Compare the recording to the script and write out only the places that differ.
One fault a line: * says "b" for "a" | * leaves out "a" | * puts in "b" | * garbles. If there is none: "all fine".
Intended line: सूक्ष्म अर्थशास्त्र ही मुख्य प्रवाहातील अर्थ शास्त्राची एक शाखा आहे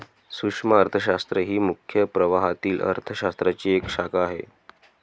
all fine